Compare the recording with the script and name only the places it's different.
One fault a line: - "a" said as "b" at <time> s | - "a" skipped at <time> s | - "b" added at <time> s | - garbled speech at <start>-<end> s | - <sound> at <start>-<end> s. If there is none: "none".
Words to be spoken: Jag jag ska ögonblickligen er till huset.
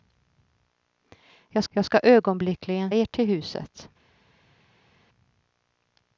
none